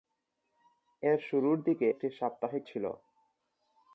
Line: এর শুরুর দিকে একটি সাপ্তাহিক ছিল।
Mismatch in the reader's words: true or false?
false